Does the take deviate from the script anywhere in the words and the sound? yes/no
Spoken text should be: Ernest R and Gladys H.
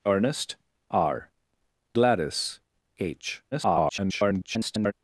yes